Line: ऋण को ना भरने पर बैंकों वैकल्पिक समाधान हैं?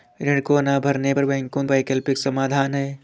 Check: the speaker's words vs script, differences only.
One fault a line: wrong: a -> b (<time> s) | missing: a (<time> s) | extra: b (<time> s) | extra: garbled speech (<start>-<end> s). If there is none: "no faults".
no faults